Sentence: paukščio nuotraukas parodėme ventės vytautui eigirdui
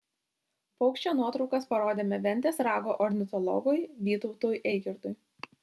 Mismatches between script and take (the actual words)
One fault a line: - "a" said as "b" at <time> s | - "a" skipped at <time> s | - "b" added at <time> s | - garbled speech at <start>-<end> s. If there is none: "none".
- "rago ornitologui" added at 2.7 s